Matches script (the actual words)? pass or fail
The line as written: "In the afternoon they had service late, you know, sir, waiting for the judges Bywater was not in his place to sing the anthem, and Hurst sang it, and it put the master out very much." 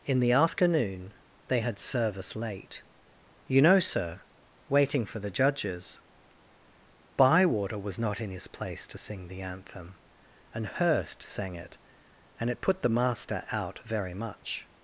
pass